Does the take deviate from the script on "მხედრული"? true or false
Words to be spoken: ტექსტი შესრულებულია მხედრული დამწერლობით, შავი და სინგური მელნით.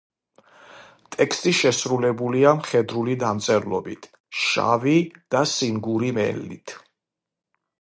false